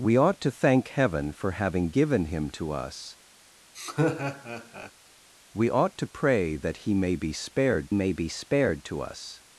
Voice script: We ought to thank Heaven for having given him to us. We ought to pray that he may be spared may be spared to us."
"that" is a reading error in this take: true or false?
false